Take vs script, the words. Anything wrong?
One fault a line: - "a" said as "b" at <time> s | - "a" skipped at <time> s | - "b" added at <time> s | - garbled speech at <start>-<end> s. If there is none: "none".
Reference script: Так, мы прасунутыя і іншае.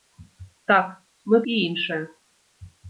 - "прасунутыя" skipped at 1.4 s